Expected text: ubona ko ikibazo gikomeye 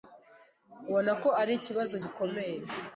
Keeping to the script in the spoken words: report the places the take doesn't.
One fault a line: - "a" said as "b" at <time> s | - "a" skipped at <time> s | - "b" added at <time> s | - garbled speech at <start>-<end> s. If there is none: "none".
- "ari" added at 1.4 s